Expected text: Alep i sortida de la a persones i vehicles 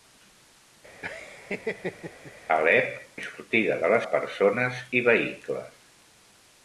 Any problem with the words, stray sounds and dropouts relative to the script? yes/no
yes